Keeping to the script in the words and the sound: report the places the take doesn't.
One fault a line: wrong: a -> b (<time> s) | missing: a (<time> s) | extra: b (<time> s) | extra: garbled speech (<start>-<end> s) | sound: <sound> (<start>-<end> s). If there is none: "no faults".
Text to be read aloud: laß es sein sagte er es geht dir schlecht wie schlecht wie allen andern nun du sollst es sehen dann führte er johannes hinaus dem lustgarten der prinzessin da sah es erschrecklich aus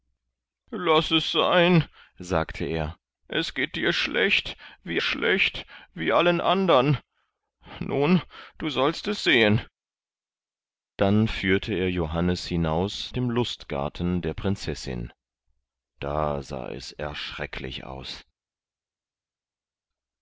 no faults